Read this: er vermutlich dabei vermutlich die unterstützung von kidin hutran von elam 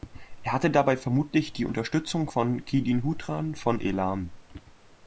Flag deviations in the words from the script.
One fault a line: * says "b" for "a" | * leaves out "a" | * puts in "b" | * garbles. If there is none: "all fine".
* says "hatte" for "vermutlich"